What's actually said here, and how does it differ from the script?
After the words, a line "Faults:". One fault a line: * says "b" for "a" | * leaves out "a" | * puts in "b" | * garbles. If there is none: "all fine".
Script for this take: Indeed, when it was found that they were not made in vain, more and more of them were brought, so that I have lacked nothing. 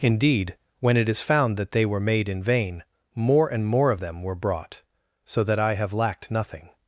Indeed, when it is found that they were made in vain, more and more of them were brought, so that I have lacked nothing.
Faults:
* says "is" for "was"
* leaves out "not"